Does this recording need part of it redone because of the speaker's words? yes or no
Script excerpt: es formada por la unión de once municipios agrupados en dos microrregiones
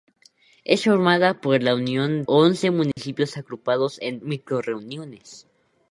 yes